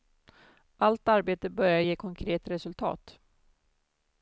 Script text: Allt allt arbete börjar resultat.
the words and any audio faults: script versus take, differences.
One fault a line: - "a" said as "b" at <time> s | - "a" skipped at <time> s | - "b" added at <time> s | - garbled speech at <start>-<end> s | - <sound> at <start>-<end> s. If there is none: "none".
- "allt" skipped at 1.1 s
- "ge konkret" added at 1.8 s